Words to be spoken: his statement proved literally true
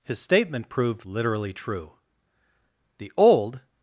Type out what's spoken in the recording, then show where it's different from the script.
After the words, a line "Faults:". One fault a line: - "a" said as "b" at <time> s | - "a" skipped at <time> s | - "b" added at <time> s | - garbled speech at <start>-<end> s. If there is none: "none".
his statement proved literally true the old
Faults:
- "the old" added at 3.0 s